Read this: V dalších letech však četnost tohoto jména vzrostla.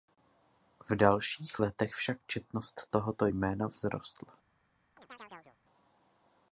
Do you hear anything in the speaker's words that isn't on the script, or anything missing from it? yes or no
no